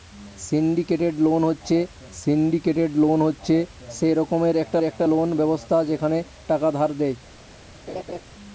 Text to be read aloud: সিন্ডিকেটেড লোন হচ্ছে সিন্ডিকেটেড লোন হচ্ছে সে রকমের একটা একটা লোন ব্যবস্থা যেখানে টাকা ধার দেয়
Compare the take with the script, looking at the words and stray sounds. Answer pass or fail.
fail